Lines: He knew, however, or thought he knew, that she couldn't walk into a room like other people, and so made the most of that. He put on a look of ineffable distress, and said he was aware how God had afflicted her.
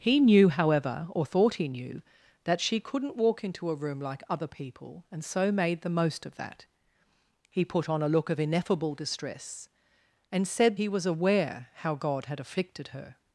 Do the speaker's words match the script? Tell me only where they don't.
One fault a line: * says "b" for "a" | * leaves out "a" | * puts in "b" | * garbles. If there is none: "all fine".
all fine